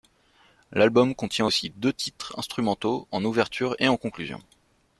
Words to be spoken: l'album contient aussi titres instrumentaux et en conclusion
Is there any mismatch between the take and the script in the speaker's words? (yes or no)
yes